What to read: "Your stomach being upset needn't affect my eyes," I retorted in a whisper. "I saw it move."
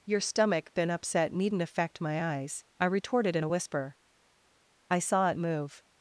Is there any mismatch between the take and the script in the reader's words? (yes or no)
yes